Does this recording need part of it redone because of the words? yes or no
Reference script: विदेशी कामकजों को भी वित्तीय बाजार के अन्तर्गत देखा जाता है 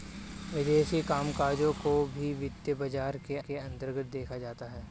yes